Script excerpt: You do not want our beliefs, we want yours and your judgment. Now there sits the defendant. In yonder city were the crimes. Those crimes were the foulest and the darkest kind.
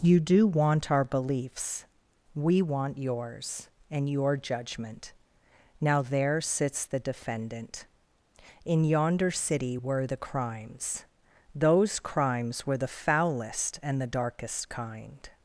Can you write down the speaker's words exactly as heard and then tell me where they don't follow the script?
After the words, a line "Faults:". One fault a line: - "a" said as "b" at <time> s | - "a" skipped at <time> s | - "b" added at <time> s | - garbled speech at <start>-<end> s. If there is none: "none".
You do want our beliefs, we want yours and your judgment. Now there sits the defendant. In yonder city were the crimes. Those crimes were the foulest and the darkest kind.
Faults:
- "not" skipped at 0.5 s